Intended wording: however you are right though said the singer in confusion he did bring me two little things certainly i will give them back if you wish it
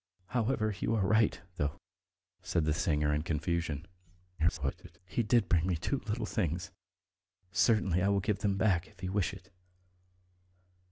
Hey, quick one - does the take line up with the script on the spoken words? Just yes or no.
no